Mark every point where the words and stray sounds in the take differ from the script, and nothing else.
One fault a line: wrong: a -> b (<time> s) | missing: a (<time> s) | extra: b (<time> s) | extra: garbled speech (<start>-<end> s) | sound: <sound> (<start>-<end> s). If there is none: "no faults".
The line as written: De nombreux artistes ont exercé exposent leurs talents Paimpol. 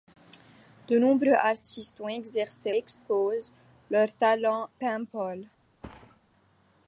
sound: thud (5.8-6.2 s)